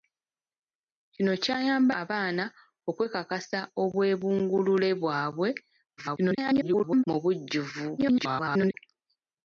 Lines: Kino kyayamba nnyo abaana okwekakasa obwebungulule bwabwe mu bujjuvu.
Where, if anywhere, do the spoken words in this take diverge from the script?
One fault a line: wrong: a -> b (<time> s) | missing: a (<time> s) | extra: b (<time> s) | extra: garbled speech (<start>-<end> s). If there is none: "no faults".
missing: nnyo (1.9 s)
extra: garbled speech (6.0-7.0 s)
extra: garbled speech (8.0-8.7 s)